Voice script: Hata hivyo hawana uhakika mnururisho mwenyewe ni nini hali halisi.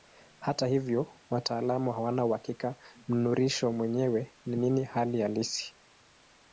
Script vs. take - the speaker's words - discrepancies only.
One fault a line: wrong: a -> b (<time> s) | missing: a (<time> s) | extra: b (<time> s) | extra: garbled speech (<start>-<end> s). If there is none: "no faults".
extra: wataalamu (1.3 s)